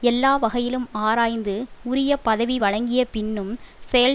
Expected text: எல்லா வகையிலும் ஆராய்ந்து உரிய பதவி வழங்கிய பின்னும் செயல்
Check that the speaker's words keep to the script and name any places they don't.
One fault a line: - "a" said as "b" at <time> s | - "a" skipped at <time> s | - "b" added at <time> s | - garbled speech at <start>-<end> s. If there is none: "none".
none